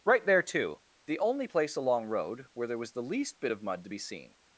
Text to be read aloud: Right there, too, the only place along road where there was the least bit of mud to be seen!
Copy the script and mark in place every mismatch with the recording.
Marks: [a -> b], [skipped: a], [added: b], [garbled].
Right there, too, the only place along road where there was the least bit of mud to be seen!